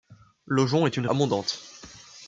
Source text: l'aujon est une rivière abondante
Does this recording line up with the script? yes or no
no